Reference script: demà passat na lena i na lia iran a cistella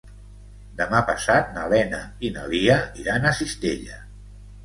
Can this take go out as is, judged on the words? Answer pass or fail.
pass